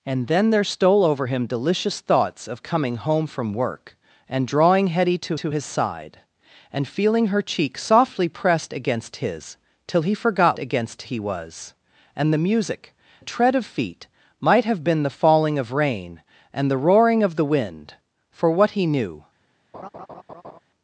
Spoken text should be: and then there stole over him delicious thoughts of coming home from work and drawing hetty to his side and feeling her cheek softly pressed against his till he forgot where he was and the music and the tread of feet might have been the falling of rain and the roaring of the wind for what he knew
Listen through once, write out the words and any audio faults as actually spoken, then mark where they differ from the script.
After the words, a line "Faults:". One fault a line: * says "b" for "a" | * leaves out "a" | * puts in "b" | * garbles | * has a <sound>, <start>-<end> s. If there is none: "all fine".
and then there stole over him delicious thoughts of coming home from work and drawing hetty to to his side and feeling her cheek softly pressed against his till he forgot against he was and the music the tread of feet might have been the falling of rain and the roaring of the wind for what he knew
Faults:
* puts in "to"
* says "against" for "where"
* leaves out "and"
* has a laugh, 19.7-20.6 s